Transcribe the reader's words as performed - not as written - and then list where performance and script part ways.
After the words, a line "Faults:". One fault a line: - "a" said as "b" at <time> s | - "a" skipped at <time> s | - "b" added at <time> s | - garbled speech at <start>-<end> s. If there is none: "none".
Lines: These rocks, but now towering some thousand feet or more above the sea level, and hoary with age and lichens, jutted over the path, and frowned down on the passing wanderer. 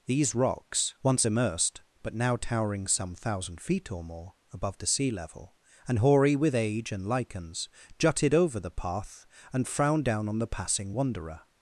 These rocks, once immersed, but now towering some thousand feet or more above the sea level, and hoary with age and lichens, jutted over the path, and frowned down on the passing wanderer.
Faults:
- "once immersed" added at 1.0 s